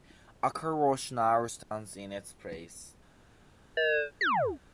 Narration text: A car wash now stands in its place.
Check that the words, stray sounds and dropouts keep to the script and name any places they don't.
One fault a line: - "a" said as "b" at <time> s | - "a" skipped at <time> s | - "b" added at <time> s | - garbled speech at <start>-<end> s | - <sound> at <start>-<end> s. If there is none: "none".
- dropout at 1.6-1.7 s
- chirp at 3.8-4.6 s